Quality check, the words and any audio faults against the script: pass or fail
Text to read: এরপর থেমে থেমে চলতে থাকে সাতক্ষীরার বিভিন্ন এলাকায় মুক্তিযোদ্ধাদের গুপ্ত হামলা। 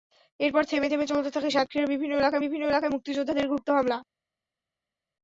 fail